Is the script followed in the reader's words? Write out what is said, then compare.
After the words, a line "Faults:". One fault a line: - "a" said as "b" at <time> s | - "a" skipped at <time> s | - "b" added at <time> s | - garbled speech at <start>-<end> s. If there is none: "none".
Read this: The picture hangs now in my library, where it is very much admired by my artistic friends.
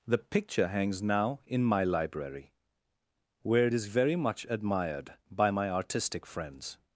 The picture hangs now in my library, where it is very much admired by my artistic friends.
Faults:
none